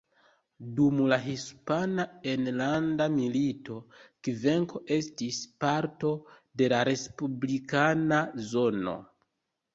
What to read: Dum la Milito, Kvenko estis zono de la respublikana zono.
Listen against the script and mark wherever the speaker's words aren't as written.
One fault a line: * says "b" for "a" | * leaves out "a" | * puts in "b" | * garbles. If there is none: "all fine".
* puts in "Hispana Enlanda"
* says "parto" for "zono"